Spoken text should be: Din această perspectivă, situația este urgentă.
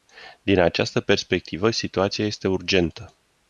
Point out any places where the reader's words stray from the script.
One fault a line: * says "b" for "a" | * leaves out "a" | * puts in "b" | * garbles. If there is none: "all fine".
all fine